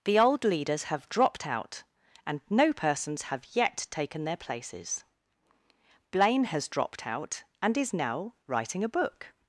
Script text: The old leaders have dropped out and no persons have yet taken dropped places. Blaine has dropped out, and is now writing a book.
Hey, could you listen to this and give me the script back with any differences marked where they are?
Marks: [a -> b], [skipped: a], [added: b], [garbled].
The old leaders have dropped out and no persons have yet taken [dropped -> their] places. Blaine has dropped out, and is now writing a book.